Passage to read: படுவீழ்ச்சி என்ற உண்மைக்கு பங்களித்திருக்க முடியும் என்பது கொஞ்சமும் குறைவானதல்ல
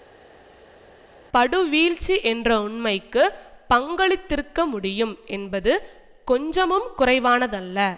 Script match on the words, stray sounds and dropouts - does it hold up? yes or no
yes